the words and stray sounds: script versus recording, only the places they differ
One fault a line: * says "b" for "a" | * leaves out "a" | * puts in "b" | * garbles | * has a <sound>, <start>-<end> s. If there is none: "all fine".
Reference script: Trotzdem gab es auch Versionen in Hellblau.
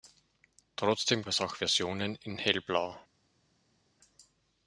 * leaves out "gab"